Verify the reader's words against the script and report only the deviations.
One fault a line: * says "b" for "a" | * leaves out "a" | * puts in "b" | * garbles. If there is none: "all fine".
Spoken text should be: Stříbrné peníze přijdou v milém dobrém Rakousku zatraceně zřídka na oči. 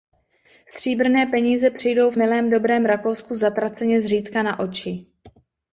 all fine